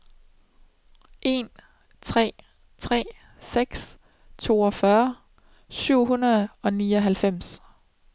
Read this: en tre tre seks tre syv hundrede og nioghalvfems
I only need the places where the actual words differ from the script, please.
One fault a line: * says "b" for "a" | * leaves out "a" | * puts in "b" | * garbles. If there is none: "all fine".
* says "toogfyrre" for "tre"